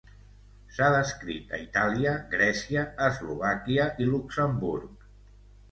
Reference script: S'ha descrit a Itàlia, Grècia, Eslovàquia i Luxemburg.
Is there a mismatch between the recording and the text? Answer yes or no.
no